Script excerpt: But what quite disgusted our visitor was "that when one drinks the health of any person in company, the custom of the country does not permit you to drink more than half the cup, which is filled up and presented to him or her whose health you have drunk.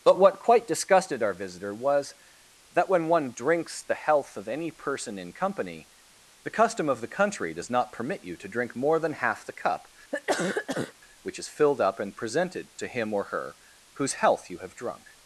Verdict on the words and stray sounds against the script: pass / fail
fail